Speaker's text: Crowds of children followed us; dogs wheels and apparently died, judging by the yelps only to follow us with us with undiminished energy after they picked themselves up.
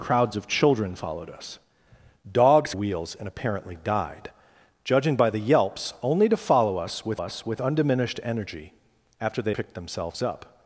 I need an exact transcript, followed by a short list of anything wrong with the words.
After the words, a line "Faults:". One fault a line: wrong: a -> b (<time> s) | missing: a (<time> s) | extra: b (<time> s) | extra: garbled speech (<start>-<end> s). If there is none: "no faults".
Crowds of children followed us; dogs wheels and apparently died, judging by the yelps only to follow us with us with undiminished energy after they picked themselves up.
Faults:
no faults